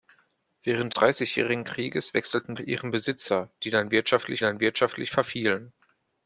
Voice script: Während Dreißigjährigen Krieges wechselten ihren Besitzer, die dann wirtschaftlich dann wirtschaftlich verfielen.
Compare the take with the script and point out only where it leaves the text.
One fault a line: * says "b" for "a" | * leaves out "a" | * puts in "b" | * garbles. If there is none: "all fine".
all fine